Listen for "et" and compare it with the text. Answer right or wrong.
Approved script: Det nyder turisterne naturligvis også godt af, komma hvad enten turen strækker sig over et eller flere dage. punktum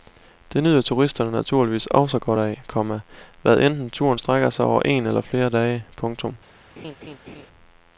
wrong